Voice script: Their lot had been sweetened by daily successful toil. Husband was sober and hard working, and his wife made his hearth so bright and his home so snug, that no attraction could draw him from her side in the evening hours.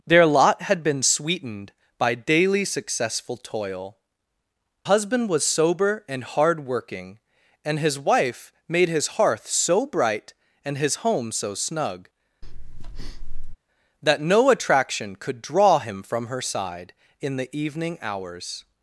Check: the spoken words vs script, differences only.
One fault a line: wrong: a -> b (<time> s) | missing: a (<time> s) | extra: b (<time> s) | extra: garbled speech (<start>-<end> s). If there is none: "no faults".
no faults